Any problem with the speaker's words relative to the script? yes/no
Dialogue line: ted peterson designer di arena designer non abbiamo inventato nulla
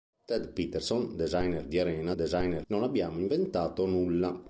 no